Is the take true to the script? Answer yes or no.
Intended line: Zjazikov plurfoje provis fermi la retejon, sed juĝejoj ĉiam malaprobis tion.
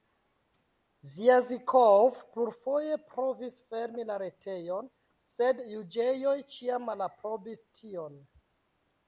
yes